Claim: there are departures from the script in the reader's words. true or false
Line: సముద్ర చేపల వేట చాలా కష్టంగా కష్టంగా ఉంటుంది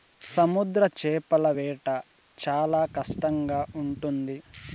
true